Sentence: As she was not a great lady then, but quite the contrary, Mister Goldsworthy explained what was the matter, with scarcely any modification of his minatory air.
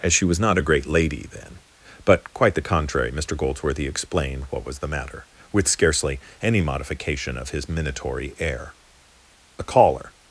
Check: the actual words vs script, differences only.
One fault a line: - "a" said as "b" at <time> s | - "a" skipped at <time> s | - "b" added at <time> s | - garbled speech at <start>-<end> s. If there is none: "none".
- "A caller" added at 9.6 s